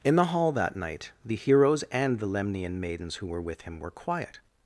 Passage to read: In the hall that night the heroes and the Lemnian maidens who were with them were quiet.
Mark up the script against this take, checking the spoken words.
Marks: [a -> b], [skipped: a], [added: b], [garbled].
In the hall that night the heroes and the Lemnian maidens who were with [them -> him] were quiet.